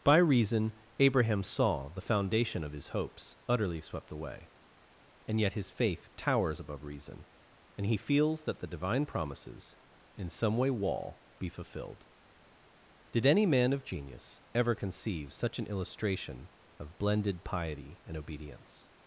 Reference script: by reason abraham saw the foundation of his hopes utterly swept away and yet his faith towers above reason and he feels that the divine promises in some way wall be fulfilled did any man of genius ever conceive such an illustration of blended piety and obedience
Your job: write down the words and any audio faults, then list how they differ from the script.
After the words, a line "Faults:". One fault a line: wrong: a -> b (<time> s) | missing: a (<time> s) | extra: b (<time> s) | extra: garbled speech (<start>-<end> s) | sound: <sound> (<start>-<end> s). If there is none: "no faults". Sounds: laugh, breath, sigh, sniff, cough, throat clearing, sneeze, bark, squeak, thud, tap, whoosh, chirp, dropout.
by reason abraham saw the foundation of his hopes utterly swept away and yet his faith towers above reason and he feels that the divine promises in some way wall be fulfilled did any man of genius ever conceive such an illustration of blended piety and obedience
Faults:
no faults